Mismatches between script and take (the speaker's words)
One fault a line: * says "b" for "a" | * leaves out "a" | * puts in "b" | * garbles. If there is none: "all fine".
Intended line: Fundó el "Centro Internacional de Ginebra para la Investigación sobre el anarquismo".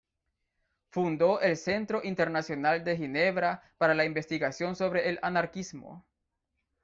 all fine